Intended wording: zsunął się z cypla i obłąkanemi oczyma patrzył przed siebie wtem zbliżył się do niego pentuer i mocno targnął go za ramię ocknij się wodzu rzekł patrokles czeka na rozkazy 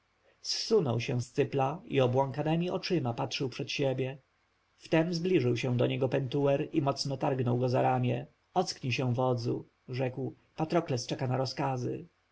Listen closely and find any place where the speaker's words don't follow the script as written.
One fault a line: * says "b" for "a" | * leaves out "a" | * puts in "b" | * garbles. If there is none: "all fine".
all fine